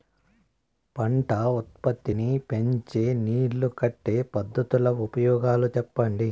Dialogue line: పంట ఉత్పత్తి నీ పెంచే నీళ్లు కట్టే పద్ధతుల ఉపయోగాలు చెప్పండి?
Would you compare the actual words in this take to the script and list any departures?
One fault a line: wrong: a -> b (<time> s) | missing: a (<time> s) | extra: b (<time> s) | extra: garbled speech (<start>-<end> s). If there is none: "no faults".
no faults